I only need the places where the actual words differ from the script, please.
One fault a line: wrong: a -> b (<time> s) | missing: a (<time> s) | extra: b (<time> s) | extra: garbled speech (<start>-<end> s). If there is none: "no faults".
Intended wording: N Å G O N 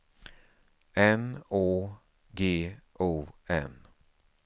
no faults